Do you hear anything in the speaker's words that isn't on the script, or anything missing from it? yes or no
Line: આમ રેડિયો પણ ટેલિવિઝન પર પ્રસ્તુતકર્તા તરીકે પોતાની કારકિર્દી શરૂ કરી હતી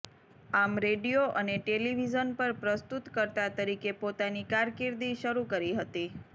yes